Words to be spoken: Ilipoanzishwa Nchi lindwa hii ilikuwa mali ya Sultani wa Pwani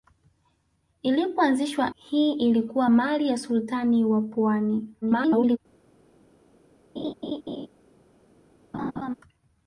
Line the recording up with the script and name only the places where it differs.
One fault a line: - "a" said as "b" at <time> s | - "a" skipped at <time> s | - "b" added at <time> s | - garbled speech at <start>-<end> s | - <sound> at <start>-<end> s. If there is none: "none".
- "Nchi lindwa" skipped at 1.9 s
- garbled speech at 5.0-5.6 s
- laugh at 7.0-7.7 s
- laugh at 8.7-9.1 s